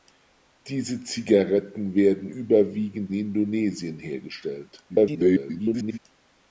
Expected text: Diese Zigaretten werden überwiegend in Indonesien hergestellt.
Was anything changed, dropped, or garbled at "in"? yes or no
yes